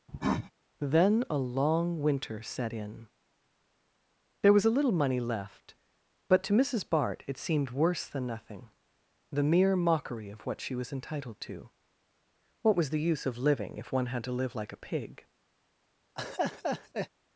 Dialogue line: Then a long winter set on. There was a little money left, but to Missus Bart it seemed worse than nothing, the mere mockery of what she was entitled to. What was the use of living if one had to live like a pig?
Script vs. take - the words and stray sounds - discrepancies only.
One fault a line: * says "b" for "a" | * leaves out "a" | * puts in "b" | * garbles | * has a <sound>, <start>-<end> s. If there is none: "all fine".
* has a cough, 0.1-0.5 s
* says "in" for "on"
* has a laugh, 16.2-17.1 s